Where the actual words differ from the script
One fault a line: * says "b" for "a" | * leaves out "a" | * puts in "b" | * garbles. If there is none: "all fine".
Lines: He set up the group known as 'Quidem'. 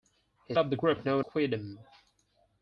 * leaves out "set"
* leaves out "as"